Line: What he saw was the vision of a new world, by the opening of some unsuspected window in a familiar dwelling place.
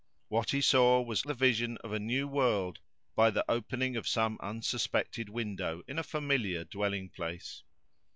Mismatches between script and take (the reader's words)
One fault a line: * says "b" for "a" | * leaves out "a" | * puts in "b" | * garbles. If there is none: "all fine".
all fine